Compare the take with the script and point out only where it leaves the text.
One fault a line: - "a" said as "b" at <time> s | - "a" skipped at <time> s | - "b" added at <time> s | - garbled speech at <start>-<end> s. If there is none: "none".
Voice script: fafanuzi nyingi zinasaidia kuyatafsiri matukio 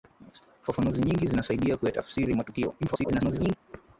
- garbled speech at 2.8-3.6 s